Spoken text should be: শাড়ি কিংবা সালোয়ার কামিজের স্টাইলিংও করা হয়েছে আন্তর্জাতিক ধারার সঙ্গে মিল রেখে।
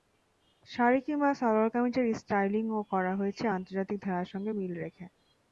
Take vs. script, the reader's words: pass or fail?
pass